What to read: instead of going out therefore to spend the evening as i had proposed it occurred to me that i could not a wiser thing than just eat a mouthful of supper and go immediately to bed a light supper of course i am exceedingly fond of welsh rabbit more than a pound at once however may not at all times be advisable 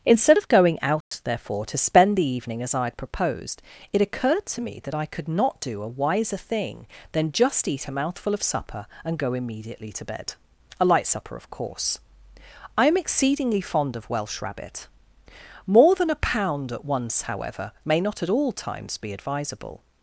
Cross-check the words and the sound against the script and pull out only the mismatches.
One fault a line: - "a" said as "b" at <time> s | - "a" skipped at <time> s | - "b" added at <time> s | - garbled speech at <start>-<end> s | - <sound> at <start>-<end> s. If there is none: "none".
- dropout at 1.0-1.1 s
- "do" added at 5.6 s